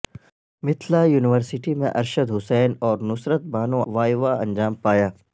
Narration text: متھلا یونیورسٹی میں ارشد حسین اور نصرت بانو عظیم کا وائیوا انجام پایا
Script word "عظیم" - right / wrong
wrong